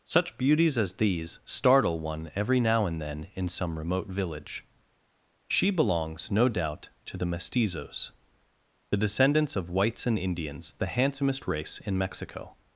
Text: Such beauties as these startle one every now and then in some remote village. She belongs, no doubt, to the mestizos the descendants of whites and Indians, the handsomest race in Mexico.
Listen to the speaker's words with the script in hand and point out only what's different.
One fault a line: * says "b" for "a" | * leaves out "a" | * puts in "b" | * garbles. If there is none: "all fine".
all fine